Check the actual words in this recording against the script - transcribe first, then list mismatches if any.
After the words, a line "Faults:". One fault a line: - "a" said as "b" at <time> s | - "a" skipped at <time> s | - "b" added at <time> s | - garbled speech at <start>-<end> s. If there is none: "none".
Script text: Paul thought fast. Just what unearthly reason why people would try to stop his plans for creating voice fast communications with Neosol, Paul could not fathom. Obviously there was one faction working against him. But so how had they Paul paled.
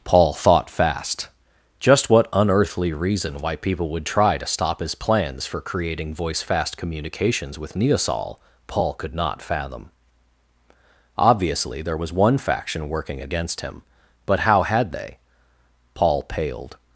Paul thought fast. Just what unearthly reason why people would try to stop his plans for creating voice fast communications with Neosol, Paul could not fathom. Obviously there was one faction working against him. But how had they Paul paled.
Faults:
- "so" skipped at 14.4 s